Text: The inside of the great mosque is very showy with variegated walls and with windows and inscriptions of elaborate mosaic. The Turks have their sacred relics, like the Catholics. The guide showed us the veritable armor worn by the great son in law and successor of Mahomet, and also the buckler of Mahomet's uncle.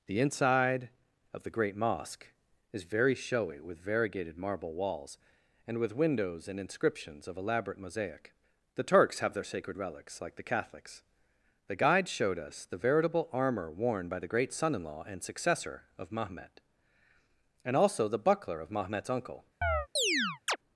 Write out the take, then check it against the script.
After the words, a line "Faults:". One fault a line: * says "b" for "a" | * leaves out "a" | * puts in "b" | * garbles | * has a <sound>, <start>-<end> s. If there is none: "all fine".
The inside of the great mosque is very showy with variegated marble walls and with windows and inscriptions of elaborate mosaic. The Turks have their sacred relics, like the Catholics. The guide showed us the veritable armor worn by the great son in law and successor of Mahomet, and also the buckler of Mahomet's uncle.
Faults:
* puts in "marble"
* has a chirp, 19.6-20.6 s